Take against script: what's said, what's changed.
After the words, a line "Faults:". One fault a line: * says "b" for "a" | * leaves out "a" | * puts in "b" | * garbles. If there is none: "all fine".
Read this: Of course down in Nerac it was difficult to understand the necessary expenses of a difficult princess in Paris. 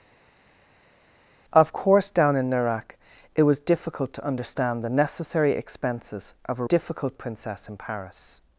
Of course down in Nerac it was difficult to understand the necessary expenses of a difficult princess in Paris.
Faults:
all fine